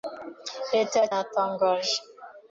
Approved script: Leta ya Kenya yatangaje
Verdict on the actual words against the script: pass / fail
fail